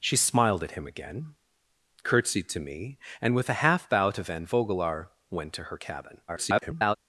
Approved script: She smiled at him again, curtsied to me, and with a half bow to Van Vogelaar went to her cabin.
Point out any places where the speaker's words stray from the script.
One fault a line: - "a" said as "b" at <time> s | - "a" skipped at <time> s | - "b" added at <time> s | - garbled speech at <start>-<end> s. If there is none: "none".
- garbled speech at 6.3-7.0 s